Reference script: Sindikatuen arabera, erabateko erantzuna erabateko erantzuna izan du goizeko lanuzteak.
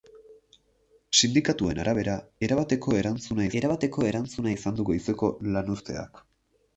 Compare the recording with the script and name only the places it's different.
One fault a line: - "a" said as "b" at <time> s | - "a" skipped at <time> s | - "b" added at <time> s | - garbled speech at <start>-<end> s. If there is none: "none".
none